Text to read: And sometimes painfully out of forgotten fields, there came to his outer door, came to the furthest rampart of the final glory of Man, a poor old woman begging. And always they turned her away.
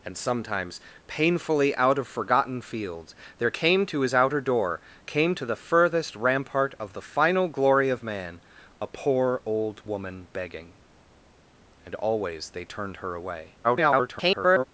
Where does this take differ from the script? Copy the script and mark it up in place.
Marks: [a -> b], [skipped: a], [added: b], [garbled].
And sometimes painfully out of forgotten fields, there came to his outer door, came to the furthest rampart of the final glory of Man, a poor old woman begging. And always they turned her away. [garbled]